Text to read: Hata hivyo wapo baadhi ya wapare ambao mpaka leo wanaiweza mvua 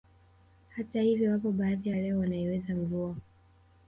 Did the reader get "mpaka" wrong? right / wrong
wrong